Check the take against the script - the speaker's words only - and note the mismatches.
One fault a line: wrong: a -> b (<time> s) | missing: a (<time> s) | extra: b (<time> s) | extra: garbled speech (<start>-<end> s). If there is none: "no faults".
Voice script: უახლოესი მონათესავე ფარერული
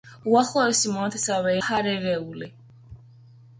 no faults